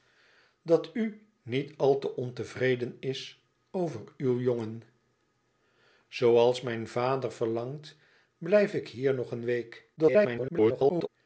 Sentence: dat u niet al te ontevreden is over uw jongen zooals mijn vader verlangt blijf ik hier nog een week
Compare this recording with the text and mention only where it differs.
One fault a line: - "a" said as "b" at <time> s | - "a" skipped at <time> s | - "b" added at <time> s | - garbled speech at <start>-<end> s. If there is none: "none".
- garbled speech at 10.0-11.1 s